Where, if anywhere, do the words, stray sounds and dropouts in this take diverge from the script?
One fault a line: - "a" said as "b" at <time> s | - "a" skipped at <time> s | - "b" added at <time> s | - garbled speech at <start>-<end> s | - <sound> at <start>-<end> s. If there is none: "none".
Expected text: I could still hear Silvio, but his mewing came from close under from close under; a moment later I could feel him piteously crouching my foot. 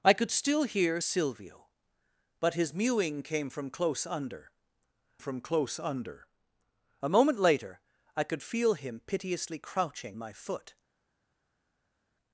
none